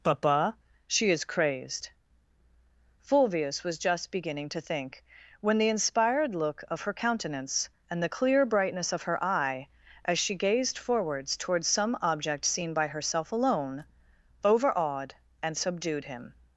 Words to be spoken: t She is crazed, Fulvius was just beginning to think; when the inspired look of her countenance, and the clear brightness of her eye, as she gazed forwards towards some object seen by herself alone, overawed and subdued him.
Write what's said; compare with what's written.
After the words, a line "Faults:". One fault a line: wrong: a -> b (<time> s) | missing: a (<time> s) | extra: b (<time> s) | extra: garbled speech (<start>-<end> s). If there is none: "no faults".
papa She is crazed, Fulvius was just beginning to think; when the inspired look of her countenance, and the clear brightness of her eye, as she gazed forwards towards some object seen by herself alone, overawed and subdued him.
Faults:
wrong: t -> papa (0.0 s)